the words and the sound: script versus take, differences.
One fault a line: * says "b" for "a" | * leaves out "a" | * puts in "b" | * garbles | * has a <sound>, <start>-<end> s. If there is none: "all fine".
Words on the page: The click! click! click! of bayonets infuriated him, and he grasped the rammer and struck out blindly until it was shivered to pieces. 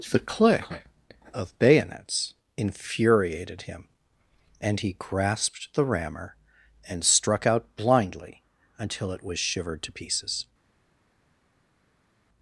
* leaves out "click click"